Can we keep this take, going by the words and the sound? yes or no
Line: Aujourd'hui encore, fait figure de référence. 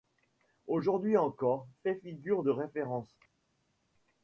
yes